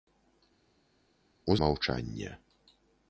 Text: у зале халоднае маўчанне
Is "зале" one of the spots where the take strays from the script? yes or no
yes